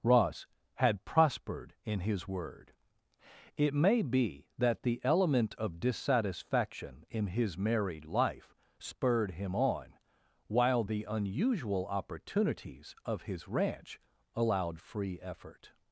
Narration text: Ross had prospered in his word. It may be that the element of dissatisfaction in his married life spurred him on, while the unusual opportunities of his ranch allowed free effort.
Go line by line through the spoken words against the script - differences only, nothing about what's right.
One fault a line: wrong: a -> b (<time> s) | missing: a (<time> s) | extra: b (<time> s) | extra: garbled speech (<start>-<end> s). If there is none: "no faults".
no faults